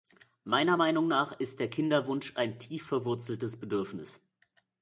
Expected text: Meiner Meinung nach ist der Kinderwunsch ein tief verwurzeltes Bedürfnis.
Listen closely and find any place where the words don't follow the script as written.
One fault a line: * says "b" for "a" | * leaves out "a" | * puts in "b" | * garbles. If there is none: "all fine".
all fine